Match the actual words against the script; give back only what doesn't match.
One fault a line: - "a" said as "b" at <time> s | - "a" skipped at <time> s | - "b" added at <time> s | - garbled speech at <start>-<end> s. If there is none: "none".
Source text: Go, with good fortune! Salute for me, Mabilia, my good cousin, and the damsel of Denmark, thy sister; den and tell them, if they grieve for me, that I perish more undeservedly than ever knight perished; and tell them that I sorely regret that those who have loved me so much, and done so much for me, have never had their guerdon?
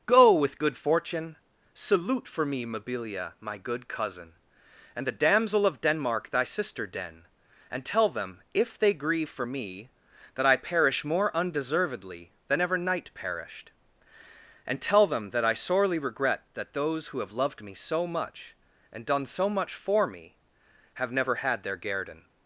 none